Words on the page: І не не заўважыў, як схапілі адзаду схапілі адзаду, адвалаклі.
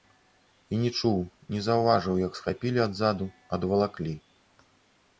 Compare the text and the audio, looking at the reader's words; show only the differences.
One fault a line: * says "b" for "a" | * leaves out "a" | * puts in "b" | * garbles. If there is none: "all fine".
* puts in "чуў"
* leaves out "схапілі адзаду"